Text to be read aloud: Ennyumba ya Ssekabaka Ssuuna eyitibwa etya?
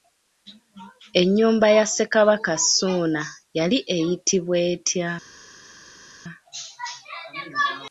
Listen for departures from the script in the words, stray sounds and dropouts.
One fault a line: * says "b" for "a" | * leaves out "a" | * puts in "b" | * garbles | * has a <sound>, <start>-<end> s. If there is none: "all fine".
* puts in "yali"